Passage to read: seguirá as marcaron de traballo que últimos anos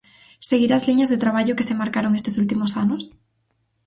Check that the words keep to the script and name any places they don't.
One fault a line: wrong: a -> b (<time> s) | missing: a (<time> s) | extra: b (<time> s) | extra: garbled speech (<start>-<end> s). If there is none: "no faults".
wrong: marcaron -> liñas (0.9 s)
extra: se marcaron estes (1.7 s)